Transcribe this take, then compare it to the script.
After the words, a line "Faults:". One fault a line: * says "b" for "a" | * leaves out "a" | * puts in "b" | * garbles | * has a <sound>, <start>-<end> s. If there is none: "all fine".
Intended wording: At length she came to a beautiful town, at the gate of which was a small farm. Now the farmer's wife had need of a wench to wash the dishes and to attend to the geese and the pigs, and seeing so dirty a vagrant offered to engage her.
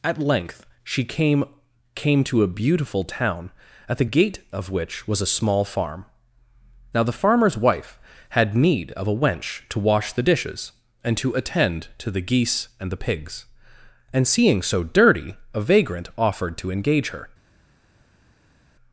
At length she came came to a beautiful town, at the gate of which was a small farm. Now the farmer's wife had need of a wench to wash the dishes and to attend to the geese and the pigs, and seeing so dirty a vagrant offered to engage her.
Faults:
* puts in "came"